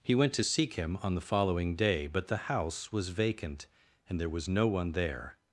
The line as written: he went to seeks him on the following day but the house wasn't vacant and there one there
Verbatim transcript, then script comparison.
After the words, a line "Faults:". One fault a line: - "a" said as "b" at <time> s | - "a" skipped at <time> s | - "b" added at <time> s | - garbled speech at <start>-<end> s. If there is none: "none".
he went to seek him on the following day but the house was vacant and there was no one there
Faults:
- "seeks" said as "seek" at 0.4 s
- "wasn't" said as "was" at 2.9 s
- "was no" added at 4.3 s